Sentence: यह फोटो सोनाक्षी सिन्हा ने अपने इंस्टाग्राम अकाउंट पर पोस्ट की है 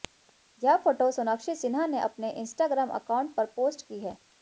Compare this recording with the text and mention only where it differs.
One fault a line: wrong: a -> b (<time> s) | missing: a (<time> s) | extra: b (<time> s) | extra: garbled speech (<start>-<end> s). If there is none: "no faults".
no faults